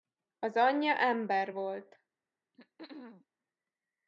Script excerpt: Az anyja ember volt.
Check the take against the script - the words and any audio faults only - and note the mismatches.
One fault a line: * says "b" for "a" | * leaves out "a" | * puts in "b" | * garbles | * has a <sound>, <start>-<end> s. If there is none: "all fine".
* has a throat clearing, 2.5-3.3 s